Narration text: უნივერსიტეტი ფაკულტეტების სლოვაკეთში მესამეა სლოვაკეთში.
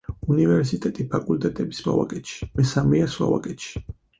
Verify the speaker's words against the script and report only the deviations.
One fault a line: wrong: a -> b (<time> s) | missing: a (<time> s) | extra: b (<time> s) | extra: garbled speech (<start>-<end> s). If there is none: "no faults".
no faults